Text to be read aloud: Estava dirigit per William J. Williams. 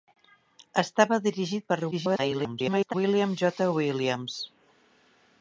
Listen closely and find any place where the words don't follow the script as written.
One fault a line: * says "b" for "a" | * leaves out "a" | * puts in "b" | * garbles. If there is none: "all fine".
* garbles